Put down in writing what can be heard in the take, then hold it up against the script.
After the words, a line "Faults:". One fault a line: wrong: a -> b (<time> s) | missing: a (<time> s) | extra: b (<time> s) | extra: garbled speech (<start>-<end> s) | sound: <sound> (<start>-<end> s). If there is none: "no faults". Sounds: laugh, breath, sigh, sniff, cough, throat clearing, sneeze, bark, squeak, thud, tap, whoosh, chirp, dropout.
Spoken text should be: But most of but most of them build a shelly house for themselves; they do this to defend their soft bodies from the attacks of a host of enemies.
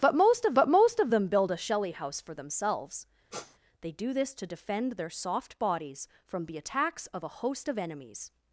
But most of but most of them build a shelly house for themselves; they do this to defend their soft bodies from the attacks of a host of enemies.
Faults:
sound: sniff (3.3-3.6 s)